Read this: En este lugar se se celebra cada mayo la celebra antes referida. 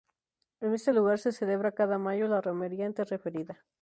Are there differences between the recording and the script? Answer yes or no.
yes